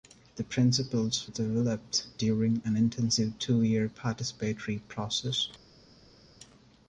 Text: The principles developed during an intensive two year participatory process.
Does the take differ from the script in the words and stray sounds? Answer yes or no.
no